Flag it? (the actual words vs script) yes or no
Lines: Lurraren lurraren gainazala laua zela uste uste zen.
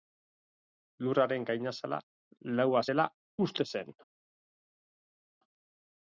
yes